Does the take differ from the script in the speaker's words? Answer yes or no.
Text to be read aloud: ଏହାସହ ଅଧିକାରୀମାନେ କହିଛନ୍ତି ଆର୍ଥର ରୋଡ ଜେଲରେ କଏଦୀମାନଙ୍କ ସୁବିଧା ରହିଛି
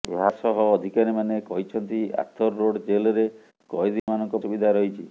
no